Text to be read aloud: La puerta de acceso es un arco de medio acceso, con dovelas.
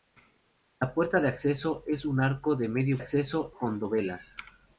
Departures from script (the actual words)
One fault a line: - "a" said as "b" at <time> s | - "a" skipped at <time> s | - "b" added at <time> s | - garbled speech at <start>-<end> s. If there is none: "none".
none